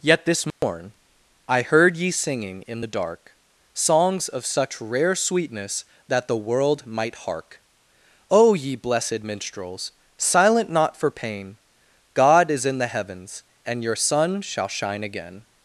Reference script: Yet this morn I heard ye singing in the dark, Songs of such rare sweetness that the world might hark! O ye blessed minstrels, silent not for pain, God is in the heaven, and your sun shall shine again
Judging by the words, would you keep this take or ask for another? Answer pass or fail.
fail